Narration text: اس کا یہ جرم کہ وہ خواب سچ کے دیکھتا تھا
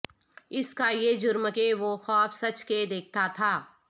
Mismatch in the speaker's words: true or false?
false